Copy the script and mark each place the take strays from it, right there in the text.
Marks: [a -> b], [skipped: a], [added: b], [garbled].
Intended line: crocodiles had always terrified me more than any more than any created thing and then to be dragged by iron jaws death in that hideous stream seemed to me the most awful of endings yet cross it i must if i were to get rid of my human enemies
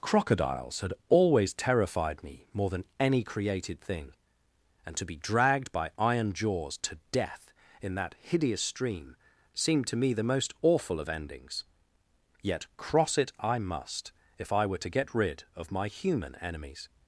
crocodiles had always terrified me more than any [skipped: more than any] created thing and [skipped: then] to be dragged by iron jaws [added: to] death in that hideous stream seemed to me the most awful of endings yet cross it i must if i were to get rid of my human enemies